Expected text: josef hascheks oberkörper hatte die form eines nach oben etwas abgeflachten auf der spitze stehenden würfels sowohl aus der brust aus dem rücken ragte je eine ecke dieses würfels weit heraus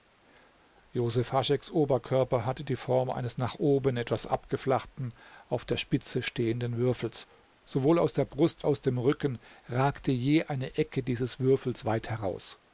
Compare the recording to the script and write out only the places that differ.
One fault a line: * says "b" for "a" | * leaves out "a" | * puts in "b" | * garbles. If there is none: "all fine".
all fine